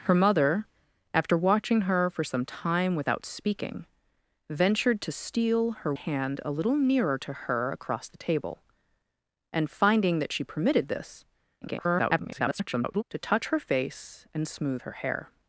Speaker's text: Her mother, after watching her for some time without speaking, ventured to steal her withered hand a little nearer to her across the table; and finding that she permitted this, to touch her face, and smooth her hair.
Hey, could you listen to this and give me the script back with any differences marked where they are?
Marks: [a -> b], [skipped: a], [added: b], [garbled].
Her mother, after watching her for some time without speaking, ventured to steal her [skipped: withered] hand a little nearer to her across the table; and finding that she permitted this, [garbled] to touch her face, and smooth her hair.